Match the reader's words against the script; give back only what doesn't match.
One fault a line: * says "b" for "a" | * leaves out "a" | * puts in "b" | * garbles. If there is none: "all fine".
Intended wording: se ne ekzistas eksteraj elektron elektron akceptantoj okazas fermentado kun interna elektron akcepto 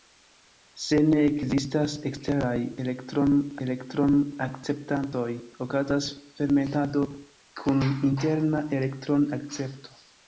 all fine